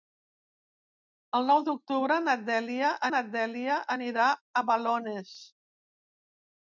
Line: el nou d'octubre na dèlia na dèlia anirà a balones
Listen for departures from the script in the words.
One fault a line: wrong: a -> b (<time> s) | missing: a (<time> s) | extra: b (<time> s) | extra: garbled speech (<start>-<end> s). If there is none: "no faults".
no faults